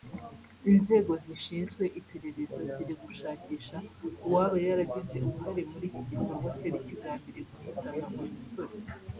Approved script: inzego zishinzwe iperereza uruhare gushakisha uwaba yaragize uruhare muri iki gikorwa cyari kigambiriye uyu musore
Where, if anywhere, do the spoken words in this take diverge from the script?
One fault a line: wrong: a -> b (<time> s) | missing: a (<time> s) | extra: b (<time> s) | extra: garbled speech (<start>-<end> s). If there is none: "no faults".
wrong: uruhare -> ziri (2.7 s)
extra: guhitana (7.5 s)